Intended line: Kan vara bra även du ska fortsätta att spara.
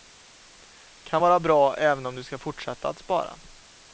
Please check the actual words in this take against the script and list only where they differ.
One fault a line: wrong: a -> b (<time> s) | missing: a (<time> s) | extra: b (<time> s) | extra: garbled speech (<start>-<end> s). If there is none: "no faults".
extra: om (2.1 s)